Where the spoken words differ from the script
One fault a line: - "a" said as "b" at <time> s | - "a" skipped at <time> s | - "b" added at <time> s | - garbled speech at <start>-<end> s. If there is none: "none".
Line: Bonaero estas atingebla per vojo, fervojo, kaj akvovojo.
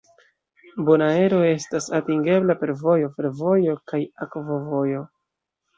none